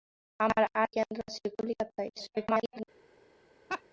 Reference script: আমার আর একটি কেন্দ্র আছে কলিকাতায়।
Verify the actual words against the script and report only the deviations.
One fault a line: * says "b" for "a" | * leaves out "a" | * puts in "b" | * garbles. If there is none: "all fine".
* leaves out "একটি"
* garbles